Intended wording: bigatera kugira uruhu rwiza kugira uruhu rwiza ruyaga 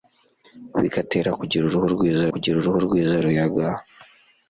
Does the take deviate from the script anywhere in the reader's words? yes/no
no